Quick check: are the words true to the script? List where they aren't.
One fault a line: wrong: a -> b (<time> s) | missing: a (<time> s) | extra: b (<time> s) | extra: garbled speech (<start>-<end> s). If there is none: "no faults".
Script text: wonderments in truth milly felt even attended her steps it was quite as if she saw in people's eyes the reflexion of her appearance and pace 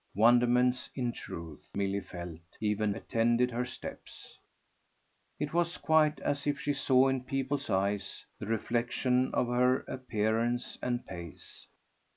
no faults